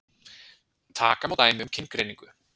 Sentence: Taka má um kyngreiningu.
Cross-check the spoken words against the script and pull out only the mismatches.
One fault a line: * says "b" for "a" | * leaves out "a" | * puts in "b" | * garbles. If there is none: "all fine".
* puts in "dæmi"